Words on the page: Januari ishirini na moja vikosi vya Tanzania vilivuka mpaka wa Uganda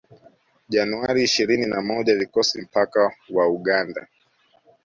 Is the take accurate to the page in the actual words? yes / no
no